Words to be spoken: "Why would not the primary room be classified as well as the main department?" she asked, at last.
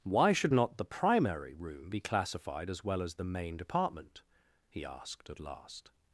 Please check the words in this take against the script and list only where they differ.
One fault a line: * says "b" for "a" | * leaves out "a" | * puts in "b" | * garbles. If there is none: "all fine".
* says "should" for "would"
* says "he" for "she"